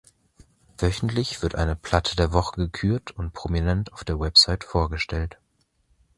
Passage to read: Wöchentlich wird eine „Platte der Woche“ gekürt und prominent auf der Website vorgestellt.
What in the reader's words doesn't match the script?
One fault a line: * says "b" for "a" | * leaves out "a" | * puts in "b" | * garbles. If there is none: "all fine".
all fine